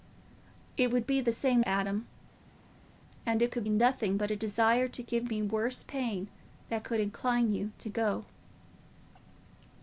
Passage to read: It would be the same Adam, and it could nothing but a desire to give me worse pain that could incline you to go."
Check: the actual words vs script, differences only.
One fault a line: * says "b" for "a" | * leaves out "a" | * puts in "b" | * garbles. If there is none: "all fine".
all fine